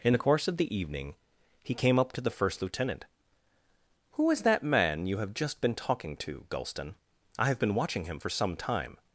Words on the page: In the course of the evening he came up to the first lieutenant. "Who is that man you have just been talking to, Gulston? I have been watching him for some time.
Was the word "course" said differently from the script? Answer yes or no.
no